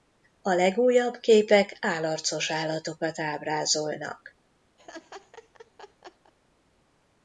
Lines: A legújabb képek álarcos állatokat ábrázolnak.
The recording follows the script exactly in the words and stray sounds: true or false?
false